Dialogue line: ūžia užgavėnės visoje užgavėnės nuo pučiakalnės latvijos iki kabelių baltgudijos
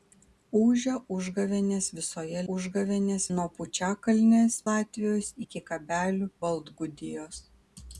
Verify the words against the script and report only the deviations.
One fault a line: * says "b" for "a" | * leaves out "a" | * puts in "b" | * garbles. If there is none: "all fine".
all fine